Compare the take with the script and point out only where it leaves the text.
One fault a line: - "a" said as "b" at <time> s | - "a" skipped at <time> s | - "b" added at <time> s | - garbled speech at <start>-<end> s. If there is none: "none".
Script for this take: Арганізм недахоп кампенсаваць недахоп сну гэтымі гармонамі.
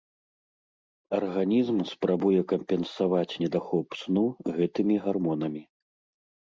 - "недахоп" said as "спрабуе" at 1.9 s